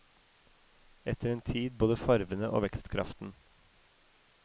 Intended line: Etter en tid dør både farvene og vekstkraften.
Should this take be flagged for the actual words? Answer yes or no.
yes